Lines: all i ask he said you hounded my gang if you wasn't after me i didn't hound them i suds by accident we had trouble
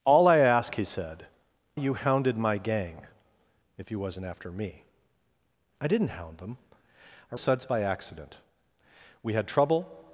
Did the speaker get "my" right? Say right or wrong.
right